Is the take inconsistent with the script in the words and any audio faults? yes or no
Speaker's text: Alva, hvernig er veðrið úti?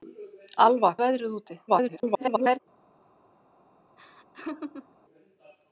yes